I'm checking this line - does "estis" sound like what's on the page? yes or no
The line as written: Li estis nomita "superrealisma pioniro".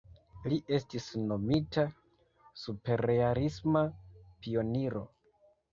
yes